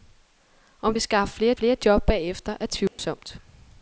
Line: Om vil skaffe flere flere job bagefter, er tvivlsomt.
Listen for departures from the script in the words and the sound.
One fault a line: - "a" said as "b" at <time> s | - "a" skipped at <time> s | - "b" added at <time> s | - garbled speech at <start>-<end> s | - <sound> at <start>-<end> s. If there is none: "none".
- dropout at 2.9-3.0 s